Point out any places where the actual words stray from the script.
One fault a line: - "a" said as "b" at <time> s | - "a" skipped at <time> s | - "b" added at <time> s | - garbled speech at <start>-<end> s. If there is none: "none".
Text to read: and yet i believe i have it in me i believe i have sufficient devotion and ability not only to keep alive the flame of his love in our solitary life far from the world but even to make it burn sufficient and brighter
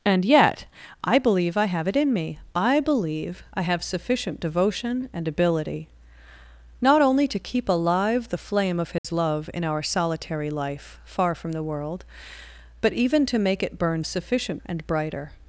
none